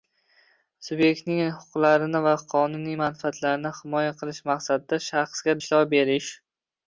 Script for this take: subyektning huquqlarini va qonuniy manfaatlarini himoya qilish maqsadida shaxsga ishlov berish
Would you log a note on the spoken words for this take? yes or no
no